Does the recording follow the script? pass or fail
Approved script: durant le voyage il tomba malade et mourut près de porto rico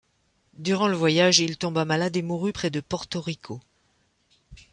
pass